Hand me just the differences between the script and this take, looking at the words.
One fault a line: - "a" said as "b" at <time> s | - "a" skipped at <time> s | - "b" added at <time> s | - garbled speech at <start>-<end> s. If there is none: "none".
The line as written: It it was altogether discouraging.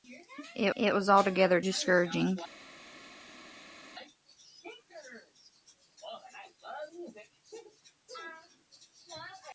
none